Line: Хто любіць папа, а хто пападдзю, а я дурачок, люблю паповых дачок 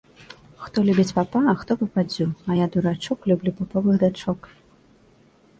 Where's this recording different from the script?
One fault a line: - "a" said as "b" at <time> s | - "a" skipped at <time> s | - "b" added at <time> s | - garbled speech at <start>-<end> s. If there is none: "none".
none